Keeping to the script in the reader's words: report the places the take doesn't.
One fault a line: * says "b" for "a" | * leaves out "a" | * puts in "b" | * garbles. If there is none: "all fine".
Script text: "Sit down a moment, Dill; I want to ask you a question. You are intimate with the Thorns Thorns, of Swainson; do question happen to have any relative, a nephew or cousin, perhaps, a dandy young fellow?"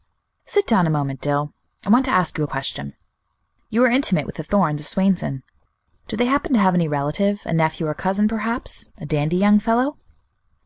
* leaves out "Thorns"
* says "they" for "question"